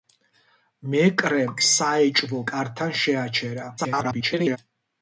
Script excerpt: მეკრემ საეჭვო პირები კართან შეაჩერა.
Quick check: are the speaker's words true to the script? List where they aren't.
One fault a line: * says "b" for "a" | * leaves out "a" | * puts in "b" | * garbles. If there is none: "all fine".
* leaves out "პირები"
* garbles